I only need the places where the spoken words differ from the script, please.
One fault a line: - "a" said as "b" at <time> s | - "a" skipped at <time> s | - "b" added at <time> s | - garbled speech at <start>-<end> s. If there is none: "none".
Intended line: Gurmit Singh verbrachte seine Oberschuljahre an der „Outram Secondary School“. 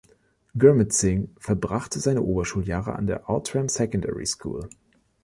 none